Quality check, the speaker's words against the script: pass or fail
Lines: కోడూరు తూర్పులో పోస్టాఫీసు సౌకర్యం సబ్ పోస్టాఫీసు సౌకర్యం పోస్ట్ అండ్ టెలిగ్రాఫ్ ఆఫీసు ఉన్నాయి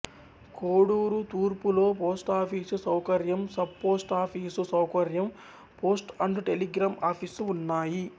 pass